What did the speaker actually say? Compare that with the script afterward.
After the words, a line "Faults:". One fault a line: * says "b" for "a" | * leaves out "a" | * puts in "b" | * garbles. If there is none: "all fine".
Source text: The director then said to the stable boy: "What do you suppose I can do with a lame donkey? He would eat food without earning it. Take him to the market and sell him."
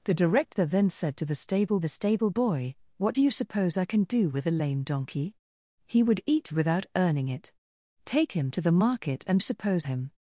The director then said to the stable the stable boy: "What do you suppose I can do with a lame donkey? He would eat without earning it. Take him to the market and suppose him."
Faults:
* puts in "the stable"
* leaves out "food"
* says "suppose" for "sell"